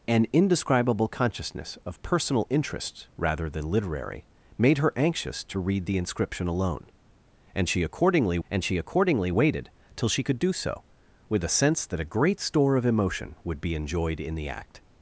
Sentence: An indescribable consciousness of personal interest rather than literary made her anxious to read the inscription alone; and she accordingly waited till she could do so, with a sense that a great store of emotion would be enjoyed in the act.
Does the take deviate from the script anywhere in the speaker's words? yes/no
yes